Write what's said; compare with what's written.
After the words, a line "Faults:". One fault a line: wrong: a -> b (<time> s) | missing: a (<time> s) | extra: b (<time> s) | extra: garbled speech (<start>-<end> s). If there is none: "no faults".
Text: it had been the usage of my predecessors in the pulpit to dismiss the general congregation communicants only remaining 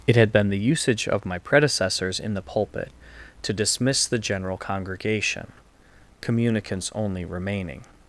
it had been the usage of my predecessors in the pulpit to dismiss the general congregation communicants only remaining
Faults:
no faults